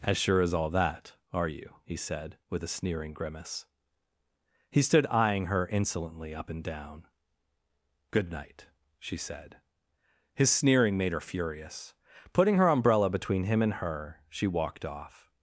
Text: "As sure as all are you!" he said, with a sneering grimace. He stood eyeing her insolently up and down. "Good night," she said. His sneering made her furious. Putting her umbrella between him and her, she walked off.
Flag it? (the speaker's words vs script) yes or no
yes